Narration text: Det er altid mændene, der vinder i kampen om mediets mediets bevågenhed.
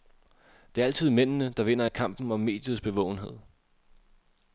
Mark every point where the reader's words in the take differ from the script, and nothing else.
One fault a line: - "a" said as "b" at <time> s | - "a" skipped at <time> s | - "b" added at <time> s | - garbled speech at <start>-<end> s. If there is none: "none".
- "mediets" skipped at 2.8 s